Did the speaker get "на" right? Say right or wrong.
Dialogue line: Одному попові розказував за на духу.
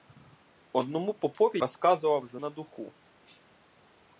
right